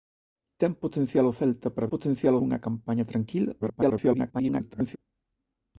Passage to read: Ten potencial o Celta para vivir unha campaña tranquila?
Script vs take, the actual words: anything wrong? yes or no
yes